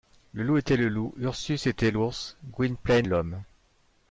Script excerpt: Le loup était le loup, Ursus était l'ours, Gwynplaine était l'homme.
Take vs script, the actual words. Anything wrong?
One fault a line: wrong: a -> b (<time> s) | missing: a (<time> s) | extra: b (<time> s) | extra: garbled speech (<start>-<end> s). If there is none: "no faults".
missing: était (3.1 s)